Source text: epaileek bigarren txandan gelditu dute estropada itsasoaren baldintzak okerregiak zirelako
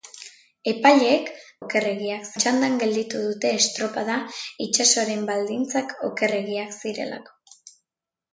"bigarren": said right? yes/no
no